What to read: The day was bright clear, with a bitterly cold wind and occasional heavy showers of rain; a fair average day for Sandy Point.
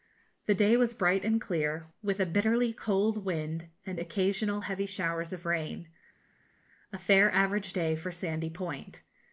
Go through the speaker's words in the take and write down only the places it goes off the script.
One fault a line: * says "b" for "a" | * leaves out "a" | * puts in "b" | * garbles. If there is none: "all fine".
* puts in "and"